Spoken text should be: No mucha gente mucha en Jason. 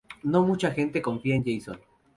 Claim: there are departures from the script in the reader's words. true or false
true